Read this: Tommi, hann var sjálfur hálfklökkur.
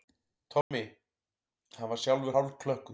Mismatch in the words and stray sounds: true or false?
true